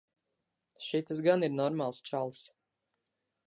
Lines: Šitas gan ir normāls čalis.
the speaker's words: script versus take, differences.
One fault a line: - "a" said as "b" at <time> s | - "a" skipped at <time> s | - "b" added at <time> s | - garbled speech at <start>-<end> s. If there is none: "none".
none